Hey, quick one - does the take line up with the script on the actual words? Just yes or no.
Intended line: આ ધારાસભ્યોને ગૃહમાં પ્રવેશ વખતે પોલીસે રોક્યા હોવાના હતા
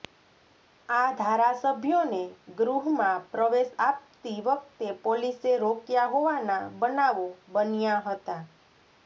no